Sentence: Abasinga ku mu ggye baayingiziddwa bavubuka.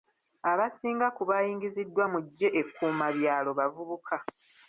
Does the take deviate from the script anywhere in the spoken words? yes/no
yes